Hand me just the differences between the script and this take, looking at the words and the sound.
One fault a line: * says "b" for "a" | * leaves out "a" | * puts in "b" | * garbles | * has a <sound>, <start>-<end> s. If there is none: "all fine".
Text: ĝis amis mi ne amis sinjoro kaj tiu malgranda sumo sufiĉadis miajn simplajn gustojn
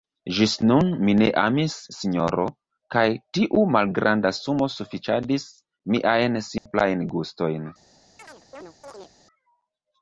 * says "nun" for "amis"
* has a dropout, 6.6-6.7 s
* has a chirp, 8.2-9.1 s